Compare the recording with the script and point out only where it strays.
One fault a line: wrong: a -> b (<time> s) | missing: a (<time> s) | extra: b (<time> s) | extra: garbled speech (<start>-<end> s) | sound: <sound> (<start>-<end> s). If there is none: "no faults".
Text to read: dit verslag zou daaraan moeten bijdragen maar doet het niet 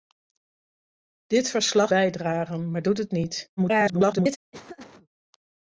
missing: zou daaraan moeten (1.9 s)
extra: garbled speech (3.6-4.4 s)
sound: laugh (4.5-5.1 s)